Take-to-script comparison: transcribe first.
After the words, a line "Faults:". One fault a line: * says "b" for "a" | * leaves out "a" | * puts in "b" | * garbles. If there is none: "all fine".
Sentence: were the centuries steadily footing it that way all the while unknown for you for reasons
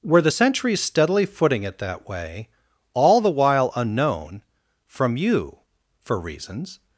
were the centuries steadily footing it that way all the while unknown from you for reasons
Faults:
* says "from" for "for"